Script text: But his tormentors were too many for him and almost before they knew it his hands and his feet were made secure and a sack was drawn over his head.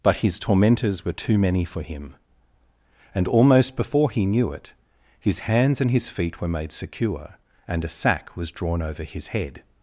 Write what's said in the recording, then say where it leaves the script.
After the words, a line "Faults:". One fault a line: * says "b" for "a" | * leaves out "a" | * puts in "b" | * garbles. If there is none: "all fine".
But his tormentors were too many for him and almost before he knew it his hands and his feet were made secure and a sack was drawn over his head.
Faults:
* says "he" for "they"